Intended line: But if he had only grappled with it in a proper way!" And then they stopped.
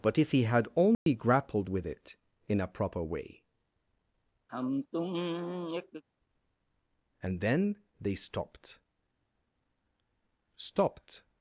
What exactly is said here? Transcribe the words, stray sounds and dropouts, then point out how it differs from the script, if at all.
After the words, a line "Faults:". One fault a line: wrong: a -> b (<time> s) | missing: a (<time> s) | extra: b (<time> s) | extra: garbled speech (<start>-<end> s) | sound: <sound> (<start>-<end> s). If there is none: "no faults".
But if he had only grappled with it in a proper way!" And then they stopped stopped.
Faults:
sound: dropout (0.9-1.1 s)
sound: sigh (4.5-6.0 s)
extra: stopped (10.5 s)